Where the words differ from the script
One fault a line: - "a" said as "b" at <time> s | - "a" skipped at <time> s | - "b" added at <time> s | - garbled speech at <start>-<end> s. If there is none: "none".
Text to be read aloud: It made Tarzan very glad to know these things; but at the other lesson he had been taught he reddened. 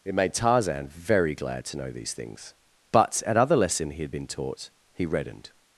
- "the" skipped at 3.4 s